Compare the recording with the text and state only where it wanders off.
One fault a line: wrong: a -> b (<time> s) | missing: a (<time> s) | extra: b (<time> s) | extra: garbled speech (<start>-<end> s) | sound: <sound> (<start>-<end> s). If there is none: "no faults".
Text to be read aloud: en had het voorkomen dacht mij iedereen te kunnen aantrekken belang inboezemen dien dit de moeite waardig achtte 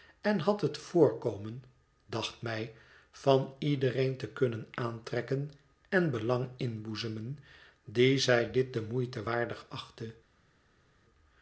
extra: van (3.1 s)
extra: en (5.9 s)
extra: zij (8.2 s)